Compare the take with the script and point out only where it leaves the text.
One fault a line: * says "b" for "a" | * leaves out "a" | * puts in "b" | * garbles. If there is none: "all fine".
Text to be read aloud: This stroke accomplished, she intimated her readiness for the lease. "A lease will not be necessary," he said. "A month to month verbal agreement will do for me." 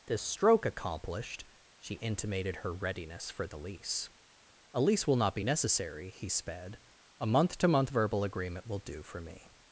* says "sped" for "said"